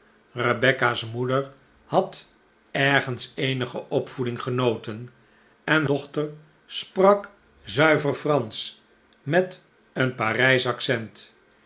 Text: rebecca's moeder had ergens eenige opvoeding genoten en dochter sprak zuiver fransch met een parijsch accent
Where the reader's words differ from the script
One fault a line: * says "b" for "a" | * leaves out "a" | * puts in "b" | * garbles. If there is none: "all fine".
all fine